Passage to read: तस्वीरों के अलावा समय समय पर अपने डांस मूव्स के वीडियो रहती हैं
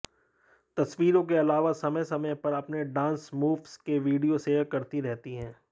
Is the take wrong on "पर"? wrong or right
right